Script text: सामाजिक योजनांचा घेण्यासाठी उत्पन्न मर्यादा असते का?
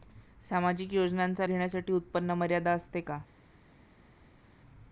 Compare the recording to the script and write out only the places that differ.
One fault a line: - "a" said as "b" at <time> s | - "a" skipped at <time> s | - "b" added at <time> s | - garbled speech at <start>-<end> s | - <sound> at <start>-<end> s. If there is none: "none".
none